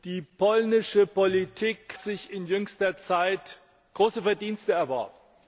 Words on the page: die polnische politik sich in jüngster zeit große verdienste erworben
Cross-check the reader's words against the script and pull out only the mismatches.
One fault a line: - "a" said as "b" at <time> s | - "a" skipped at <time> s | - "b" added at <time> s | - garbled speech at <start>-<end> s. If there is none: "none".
none